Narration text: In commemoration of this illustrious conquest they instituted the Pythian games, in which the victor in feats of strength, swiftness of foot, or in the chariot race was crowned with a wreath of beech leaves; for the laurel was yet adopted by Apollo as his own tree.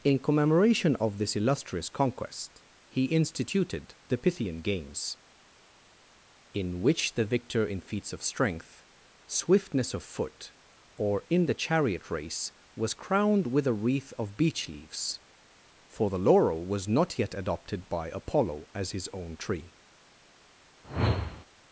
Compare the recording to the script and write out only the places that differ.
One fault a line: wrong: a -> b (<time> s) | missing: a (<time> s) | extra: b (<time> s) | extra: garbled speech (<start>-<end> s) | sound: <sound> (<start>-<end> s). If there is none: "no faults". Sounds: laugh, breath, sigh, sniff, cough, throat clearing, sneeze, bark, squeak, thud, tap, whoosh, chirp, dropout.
wrong: they -> he (2.9 s)
extra: not (16.9 s)
sound: whoosh (20.8-21.5 s)